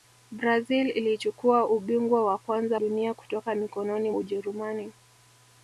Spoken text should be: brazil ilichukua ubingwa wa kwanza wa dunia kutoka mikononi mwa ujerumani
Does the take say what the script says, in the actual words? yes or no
no